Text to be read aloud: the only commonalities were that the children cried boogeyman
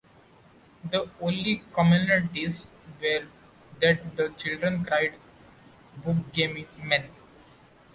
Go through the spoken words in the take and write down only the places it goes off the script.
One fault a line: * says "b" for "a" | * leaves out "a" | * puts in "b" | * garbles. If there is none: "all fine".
all fine